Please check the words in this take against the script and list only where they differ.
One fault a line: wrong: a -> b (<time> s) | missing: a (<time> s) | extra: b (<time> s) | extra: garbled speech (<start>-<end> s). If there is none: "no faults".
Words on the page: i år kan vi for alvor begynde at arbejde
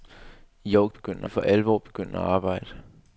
wrong: kan -> begynde (0.9 s)